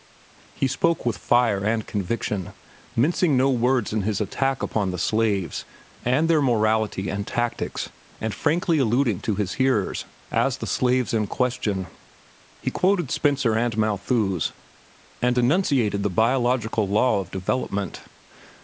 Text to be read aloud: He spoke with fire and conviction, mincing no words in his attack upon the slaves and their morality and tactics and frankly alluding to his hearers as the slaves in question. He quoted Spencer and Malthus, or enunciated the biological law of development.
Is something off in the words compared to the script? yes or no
yes